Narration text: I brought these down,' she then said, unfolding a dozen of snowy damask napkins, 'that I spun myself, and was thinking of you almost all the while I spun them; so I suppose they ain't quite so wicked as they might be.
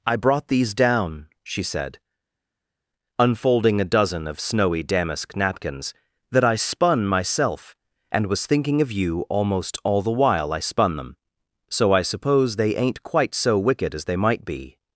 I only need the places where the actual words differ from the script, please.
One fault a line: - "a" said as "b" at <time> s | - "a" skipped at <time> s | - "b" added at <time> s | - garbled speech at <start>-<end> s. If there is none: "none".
- "then" skipped at 1.6 s